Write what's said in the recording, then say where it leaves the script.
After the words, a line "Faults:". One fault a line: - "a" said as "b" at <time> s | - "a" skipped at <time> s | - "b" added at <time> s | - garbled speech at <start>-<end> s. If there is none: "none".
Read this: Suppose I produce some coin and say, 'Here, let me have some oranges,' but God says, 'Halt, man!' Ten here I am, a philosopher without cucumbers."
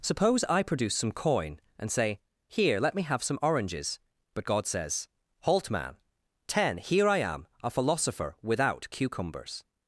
Suppose I produce some coin and say, 'Here, let me have some oranges,' but God says, 'Halt, man!' Ten here I am, a philosopher without cucumbers."
Faults:
none